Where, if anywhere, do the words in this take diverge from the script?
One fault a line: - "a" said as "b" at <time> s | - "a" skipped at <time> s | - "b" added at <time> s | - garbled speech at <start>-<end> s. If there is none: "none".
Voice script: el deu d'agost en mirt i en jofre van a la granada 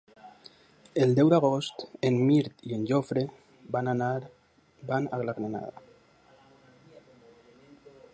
none